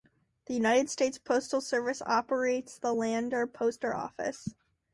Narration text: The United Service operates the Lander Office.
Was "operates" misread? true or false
false